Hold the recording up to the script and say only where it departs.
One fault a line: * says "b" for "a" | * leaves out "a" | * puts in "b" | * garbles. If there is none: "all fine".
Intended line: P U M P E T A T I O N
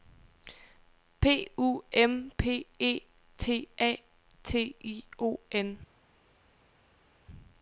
all fine